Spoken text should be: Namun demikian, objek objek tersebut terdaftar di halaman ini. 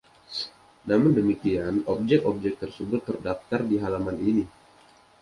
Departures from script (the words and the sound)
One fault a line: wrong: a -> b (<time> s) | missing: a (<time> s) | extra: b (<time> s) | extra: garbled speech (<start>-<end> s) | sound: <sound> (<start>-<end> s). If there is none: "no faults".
no faults